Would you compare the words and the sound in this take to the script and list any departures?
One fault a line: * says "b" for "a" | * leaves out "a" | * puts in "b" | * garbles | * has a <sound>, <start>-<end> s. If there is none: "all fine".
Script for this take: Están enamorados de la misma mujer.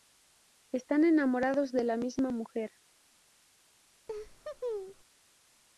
* has a laugh, 4.1-5.0 s